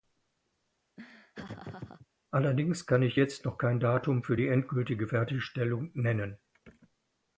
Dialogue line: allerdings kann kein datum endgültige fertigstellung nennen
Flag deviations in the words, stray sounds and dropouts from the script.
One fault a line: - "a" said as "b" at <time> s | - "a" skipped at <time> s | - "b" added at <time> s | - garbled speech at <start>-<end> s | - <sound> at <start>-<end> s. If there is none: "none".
- laugh at 1.0-2.1 s
- "ich jetzt noch" added at 3.0 s
- "für die" added at 4.2 s